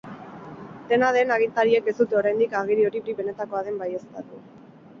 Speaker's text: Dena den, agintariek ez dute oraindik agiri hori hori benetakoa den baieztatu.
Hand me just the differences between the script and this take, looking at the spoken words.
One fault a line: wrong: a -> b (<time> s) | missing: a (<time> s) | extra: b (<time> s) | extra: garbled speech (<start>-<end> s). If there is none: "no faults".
no faults